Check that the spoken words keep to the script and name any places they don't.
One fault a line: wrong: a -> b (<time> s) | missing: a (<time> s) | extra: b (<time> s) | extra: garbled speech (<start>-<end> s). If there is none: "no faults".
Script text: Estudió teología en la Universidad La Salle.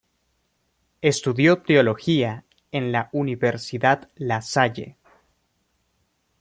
no faults